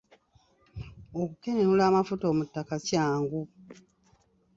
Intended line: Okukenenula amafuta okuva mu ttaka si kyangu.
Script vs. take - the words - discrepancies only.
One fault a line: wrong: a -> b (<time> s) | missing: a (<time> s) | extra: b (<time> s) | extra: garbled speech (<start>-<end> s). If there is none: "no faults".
missing: okuva (2.2 s)
missing: si (2.7 s)